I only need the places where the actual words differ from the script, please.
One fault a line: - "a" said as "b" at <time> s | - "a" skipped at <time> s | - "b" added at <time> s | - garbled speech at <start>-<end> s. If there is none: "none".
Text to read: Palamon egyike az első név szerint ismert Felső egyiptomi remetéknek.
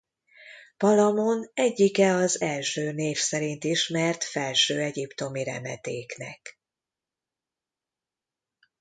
none